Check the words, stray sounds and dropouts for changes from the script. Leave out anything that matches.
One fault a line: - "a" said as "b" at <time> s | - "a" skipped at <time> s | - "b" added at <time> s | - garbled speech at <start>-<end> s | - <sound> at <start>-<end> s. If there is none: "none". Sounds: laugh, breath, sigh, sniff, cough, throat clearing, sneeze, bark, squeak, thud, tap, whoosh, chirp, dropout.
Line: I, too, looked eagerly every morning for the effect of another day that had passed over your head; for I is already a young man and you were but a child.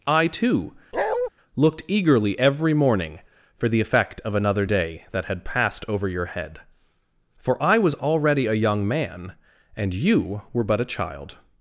- bark at 0.9-1.3 s
- "is" said as "was" at 7.8 s